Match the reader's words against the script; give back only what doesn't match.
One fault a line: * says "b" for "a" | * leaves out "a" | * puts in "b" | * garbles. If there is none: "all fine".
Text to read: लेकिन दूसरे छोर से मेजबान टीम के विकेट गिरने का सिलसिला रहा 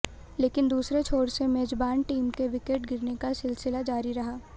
* puts in "जारी"